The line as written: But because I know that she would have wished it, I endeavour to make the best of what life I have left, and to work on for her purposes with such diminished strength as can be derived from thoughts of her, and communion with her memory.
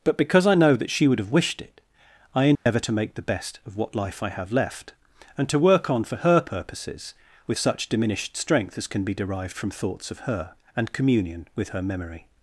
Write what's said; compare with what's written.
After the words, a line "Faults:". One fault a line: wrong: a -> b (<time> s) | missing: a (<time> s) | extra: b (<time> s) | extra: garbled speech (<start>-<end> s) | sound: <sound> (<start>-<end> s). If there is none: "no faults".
But because I know that she would have wished it, I endeavour to make the best of what life I have left, and to work on for her purposes with such diminished strength as can be derived from thoughts of her, and communion with her memory.
Faults:
sound: dropout (2.6-2.7 s)